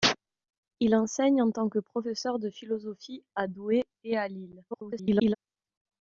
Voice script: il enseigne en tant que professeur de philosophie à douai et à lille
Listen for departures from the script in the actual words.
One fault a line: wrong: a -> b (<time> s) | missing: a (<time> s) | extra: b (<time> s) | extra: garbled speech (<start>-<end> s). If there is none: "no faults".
extra: garbled speech (4.7-5.4 s)